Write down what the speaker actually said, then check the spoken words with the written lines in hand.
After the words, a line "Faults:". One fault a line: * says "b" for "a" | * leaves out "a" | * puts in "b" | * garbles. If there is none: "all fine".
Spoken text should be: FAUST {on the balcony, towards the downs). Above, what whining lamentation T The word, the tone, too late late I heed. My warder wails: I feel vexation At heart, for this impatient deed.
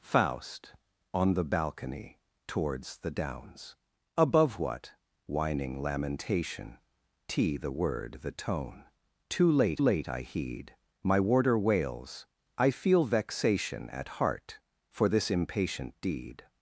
FAUST {on the balcony, towards the downs). Above, what whining lamentation T The word, the tone, too late late I heed. My warder wails: I feel vexation At heart, for this impatient deed.
Faults:
all fine